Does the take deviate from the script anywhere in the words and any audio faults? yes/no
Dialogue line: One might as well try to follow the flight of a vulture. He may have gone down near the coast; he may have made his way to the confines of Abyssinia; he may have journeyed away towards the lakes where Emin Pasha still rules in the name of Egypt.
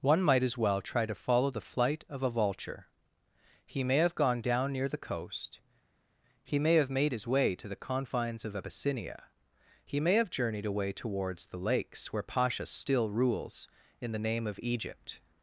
yes